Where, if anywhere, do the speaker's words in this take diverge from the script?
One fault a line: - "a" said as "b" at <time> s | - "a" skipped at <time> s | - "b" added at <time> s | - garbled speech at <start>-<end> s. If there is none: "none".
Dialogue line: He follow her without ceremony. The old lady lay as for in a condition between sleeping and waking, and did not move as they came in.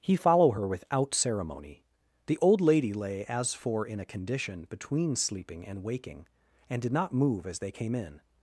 none